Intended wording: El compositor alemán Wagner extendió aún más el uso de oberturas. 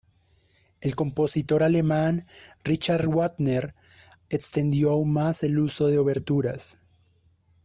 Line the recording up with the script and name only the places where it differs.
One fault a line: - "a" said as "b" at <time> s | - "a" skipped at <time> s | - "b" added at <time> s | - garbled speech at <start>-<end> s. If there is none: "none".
- "Richard" added at 2.6 s